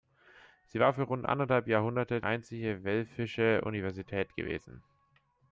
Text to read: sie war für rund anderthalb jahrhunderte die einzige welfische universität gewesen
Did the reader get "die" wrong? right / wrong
wrong